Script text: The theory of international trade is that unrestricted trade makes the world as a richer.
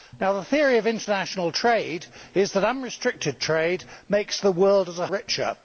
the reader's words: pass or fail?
pass